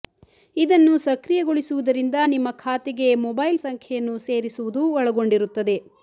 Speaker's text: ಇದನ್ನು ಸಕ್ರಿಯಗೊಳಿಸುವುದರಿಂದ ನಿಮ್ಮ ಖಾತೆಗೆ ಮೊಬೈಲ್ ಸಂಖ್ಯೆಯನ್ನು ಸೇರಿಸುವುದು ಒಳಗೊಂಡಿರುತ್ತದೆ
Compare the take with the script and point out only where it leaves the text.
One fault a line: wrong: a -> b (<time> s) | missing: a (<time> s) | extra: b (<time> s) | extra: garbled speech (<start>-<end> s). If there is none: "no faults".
no faults